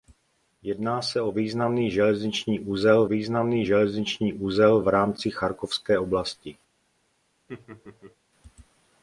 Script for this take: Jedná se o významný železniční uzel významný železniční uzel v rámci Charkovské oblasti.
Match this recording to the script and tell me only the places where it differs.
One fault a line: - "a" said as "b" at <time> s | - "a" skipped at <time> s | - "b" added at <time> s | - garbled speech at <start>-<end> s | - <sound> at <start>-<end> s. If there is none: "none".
- laugh at 7.5-8.2 s